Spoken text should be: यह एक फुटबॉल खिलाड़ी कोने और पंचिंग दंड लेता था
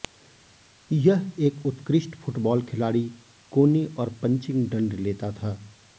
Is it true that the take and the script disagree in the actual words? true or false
true